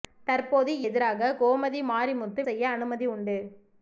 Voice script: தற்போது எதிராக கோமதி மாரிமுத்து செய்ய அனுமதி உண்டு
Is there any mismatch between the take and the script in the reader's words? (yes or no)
no